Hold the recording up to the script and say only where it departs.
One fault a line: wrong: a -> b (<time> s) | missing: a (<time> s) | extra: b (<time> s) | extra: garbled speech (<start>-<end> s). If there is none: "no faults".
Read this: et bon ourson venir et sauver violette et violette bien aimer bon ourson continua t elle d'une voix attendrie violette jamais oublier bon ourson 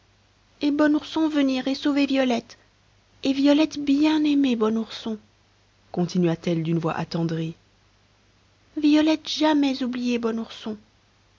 no faults